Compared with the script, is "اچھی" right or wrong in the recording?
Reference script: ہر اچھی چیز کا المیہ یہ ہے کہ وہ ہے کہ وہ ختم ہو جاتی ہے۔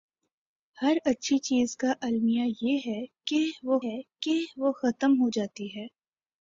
right